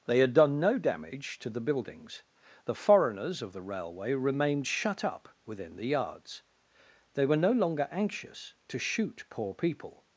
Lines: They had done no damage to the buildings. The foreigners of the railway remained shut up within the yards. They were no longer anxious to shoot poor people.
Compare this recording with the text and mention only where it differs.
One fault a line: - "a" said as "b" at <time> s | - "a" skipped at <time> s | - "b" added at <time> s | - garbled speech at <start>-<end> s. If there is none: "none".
none